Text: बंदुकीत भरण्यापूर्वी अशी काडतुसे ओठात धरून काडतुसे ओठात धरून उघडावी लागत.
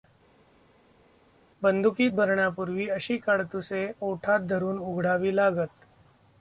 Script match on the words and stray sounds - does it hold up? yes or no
no